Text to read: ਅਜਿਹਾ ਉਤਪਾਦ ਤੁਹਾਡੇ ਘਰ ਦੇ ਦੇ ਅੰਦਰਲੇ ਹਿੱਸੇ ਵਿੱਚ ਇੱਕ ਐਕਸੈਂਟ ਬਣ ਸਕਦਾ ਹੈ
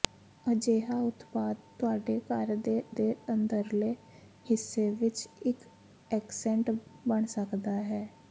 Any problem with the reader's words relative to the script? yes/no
no